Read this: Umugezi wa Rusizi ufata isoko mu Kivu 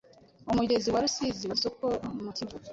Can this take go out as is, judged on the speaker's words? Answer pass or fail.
fail